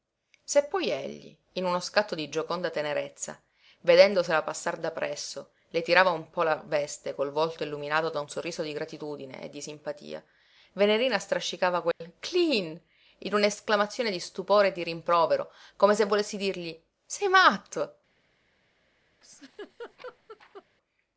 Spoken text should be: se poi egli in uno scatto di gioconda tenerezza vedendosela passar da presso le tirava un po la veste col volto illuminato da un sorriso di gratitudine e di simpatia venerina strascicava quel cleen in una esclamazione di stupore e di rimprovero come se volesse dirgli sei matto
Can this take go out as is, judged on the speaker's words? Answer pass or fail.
pass